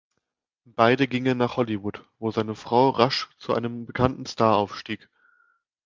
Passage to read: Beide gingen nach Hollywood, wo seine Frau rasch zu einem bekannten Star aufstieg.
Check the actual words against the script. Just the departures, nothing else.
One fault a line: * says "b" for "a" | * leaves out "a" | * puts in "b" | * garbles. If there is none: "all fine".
all fine